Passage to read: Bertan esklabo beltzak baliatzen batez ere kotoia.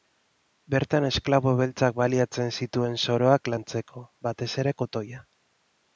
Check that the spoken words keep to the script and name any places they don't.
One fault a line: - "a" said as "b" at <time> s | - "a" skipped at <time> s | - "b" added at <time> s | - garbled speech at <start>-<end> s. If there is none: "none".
- "zituen soroak lantzeko" added at 2.6 s